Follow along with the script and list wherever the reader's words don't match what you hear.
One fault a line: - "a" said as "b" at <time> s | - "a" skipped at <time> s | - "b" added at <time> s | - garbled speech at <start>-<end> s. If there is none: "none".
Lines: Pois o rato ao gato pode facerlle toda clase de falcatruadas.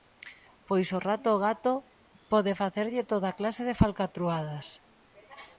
none